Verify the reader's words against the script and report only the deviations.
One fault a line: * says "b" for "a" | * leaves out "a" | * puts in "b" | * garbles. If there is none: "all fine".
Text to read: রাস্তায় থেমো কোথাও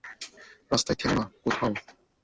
* puts in "না"